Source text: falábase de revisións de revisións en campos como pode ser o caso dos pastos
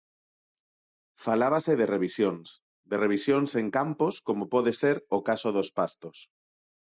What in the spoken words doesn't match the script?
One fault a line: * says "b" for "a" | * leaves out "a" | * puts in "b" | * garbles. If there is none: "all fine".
all fine